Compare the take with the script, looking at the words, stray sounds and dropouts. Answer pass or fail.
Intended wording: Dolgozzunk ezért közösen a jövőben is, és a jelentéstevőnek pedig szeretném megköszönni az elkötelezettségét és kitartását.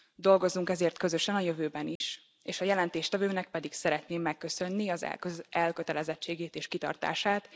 fail